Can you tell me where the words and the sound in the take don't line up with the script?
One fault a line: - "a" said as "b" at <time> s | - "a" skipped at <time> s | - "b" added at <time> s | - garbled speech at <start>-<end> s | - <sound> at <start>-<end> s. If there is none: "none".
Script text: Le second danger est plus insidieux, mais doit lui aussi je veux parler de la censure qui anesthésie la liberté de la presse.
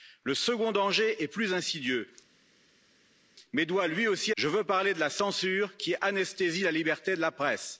none